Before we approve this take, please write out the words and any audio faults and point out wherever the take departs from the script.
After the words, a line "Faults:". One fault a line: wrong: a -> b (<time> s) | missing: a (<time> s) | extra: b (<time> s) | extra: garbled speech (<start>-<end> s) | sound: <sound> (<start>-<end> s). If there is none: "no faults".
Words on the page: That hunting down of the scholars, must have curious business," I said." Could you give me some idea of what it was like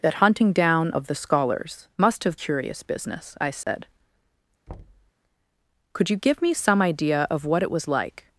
That hunting down of the scholars, must have curious business," I said." Could you give me some idea of what it was like
Faults:
sound: dropout (3.6-3.7 s)
sound: thud (4.7-5.1 s)